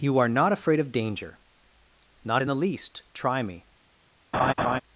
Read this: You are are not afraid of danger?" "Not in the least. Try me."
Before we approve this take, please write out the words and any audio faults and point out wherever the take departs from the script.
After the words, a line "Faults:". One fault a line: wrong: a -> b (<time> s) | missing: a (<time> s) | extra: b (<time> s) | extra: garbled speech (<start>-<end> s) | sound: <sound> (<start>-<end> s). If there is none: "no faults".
You are not afraid of danger?" "Not in the least. Try me."
Faults:
missing: are (0.3 s)
sound: laugh (4.3-4.8 s)